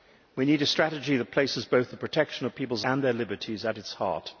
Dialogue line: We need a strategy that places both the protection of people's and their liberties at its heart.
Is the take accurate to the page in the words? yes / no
yes